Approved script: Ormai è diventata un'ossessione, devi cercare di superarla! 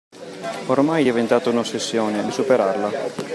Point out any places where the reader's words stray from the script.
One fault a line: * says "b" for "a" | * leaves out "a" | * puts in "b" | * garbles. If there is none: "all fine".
* leaves out "devi cercare"